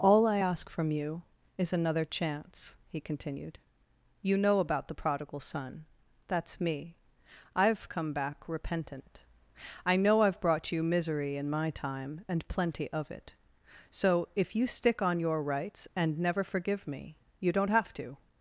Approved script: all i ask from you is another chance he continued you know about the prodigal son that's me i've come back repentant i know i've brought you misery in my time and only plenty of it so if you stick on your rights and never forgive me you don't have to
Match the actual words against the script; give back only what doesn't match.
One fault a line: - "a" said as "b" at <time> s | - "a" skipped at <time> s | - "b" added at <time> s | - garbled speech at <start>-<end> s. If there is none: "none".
- "only" skipped at 12.5 s